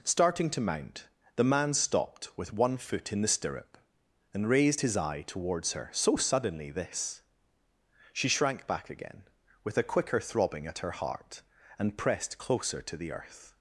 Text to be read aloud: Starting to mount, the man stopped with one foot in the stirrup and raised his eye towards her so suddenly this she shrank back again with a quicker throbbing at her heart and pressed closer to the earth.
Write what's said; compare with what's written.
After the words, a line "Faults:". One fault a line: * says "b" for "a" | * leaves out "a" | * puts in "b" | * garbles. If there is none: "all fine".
Starting to mount, the man stopped with one foot in the stirrup and raised his eye towards her so suddenly this she shrank back again with a quicker throbbing at her heart and pressed closer to the earth.
Faults:
all fine